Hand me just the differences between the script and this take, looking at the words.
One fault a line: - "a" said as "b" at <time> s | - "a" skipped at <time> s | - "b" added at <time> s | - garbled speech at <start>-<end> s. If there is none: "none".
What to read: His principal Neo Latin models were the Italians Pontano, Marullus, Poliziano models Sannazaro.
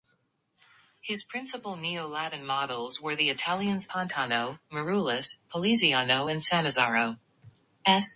- "models" said as "and" at 6.3 s